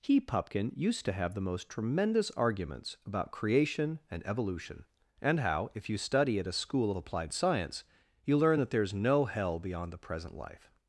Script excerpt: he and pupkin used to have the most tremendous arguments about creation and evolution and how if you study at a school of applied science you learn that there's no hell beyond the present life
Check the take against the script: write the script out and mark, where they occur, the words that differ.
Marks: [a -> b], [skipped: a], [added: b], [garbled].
he [skipped: and] pupkin used to have the most tremendous arguments about creation and evolution and how if you study at a school of applied science you learn that there's no hell beyond the present life